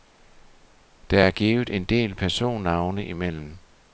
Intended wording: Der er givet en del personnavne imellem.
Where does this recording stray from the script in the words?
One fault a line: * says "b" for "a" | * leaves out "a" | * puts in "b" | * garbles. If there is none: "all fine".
all fine